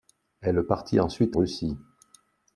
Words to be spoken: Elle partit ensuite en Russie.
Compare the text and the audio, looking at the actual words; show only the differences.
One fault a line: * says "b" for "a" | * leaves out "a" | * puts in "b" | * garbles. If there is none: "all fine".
* leaves out "en"